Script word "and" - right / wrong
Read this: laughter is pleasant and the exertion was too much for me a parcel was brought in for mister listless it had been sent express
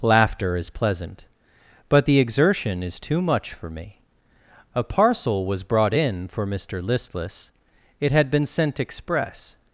wrong